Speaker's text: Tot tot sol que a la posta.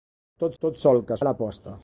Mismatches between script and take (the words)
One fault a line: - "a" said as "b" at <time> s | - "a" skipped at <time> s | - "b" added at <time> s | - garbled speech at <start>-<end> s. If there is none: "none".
none